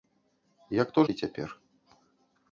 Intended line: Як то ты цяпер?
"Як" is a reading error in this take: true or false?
false